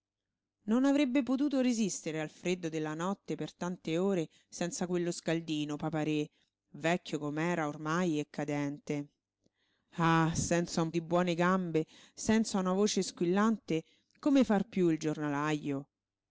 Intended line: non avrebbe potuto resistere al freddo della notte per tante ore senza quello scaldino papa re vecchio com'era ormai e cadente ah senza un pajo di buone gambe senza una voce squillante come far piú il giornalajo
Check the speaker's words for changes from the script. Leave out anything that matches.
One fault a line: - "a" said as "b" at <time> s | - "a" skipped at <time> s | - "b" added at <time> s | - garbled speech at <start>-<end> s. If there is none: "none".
- "pajo" skipped at 10.9 s